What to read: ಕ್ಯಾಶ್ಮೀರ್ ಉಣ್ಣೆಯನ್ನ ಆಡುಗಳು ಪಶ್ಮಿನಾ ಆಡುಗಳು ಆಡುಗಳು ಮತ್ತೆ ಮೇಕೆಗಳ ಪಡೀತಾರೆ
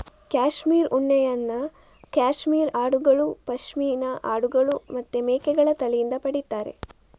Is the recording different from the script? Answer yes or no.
yes